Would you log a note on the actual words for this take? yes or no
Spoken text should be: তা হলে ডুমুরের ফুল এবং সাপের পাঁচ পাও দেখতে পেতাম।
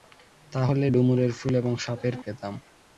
yes